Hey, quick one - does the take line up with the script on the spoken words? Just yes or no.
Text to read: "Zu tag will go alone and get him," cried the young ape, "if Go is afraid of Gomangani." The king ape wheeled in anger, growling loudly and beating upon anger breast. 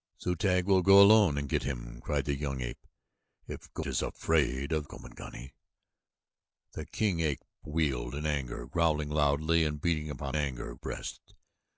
yes